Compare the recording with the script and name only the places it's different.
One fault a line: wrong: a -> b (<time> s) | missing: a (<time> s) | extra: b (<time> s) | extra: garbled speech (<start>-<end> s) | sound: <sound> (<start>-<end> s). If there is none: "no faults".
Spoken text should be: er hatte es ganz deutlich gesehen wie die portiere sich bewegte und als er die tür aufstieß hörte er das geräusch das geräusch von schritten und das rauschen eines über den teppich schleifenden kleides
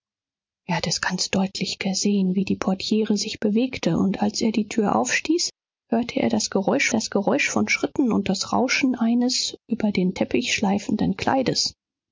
no faults